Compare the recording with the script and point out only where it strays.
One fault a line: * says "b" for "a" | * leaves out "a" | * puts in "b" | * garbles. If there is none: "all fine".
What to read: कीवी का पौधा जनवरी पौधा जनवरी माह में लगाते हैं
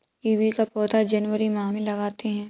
* leaves out "पौधा जनवरी"